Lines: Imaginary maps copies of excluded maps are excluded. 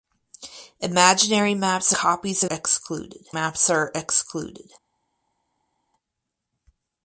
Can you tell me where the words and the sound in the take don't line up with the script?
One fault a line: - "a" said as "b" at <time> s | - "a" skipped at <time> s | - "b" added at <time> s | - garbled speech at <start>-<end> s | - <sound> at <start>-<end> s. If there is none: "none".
none